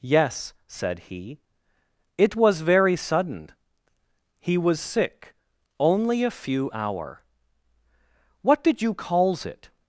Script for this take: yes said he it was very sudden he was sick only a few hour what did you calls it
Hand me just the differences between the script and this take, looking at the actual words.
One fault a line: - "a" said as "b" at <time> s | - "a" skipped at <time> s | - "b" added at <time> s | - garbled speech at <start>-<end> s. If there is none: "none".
none